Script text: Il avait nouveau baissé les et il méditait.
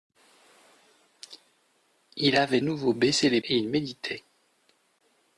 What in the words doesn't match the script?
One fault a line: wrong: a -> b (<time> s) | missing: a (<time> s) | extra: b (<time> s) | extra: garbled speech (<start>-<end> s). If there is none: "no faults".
no faults